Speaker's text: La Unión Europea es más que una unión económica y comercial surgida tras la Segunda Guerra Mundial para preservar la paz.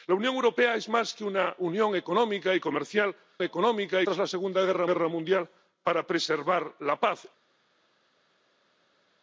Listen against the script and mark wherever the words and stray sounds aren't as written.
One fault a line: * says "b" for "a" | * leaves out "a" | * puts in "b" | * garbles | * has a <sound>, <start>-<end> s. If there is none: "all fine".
* says "económica" for "surgida"
* puts in "Guerra"